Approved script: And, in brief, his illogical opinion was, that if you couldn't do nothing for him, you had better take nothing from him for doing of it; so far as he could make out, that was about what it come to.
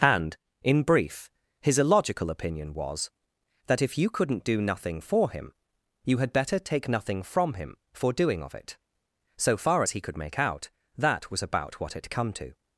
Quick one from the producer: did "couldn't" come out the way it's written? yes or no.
yes